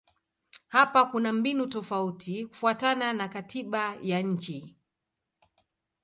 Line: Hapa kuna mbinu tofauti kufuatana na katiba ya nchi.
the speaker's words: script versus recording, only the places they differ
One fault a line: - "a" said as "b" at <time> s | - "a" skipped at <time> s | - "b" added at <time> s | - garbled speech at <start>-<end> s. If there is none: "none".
none